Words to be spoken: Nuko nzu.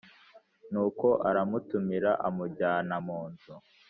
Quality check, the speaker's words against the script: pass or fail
fail